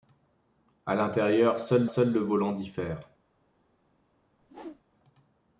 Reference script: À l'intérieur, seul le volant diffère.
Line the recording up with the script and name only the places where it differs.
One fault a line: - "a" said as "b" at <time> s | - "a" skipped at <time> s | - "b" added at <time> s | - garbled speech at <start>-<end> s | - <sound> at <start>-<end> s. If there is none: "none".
- "seul" added at 1.9 s
- whoosh at 4.4-4.8 s